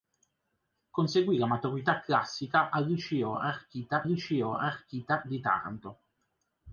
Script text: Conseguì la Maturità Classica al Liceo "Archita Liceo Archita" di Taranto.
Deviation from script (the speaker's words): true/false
false